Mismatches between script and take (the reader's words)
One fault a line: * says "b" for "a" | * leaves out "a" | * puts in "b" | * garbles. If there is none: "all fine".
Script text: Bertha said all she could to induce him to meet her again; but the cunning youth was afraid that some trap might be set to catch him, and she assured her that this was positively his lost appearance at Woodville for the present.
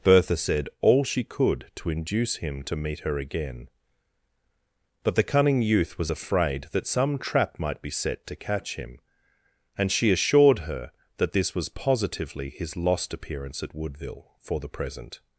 all fine